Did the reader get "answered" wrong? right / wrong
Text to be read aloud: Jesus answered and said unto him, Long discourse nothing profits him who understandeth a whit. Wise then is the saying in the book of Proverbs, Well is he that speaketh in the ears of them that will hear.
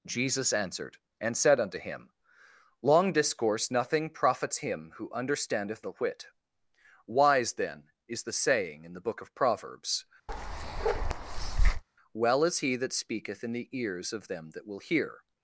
right